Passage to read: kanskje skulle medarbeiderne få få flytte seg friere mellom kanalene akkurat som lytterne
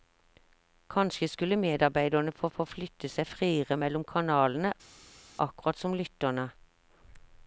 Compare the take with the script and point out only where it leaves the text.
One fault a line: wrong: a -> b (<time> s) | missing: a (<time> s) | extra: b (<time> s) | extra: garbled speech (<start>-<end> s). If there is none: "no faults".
no faults